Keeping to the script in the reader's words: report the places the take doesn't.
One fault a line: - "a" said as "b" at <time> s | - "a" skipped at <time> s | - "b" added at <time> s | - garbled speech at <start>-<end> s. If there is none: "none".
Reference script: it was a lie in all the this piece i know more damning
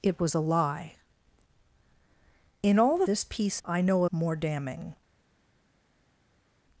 none